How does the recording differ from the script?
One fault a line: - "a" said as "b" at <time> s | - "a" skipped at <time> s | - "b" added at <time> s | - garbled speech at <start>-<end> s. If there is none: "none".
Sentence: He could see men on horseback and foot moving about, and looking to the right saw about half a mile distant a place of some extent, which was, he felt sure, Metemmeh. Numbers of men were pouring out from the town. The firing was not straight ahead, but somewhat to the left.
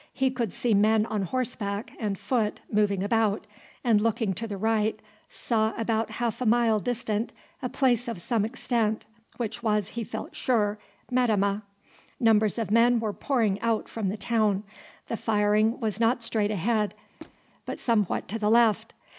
none